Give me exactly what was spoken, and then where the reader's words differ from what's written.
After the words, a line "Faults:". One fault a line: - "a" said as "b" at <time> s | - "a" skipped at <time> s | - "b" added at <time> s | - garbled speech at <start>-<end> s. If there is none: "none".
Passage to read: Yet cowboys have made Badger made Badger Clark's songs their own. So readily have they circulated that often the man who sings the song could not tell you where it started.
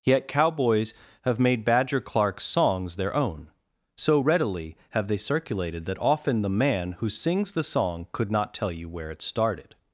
Yet cowboys have made Badger Clark's songs their own. So readily have they circulated that often the man who sings the song could not tell you where it started.
Faults:
- "made Badger" skipped at 2.0 s